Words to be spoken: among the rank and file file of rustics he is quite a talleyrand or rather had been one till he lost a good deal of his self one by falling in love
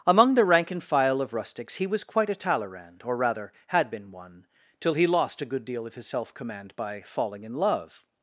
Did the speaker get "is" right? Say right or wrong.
wrong